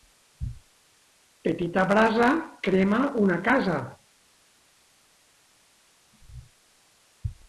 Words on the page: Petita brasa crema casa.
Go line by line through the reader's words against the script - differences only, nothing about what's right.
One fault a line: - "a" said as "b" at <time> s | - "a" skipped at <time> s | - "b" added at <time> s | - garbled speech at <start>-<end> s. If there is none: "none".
- "una" added at 3.2 s